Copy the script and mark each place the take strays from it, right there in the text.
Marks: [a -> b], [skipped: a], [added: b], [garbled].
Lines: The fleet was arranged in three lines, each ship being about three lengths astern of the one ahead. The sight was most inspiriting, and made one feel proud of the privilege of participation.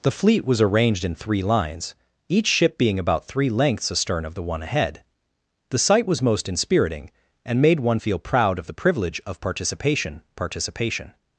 The fleet was arranged in three lines, each ship being about three lengths astern of the one ahead. The sight was most inspiriting, and made one feel proud of the privilege of participation. [added: participation]